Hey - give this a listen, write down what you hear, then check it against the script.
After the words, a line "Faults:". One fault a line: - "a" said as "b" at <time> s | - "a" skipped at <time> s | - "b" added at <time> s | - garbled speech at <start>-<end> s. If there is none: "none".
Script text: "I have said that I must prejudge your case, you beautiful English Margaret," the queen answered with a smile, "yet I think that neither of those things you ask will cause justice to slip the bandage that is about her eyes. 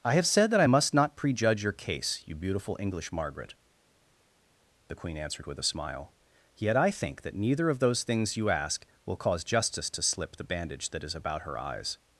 "I have said that I must not prejudge your case, you beautiful English Margaret," the queen answered with a smile, "yet I think that neither of those things you ask will cause justice to slip the bandage that is about her eyes.
Faults:
- "not" added at 0.9 s